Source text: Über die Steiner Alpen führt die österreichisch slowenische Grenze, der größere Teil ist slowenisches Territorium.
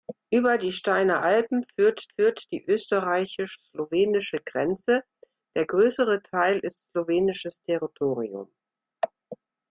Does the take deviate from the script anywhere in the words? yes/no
yes